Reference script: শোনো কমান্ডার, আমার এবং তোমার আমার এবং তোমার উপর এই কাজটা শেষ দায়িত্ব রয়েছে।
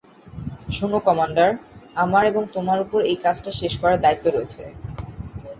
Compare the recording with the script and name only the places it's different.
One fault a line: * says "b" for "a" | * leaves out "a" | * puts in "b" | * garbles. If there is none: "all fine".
* leaves out "আমার এবং তোমার"
* puts in "করার"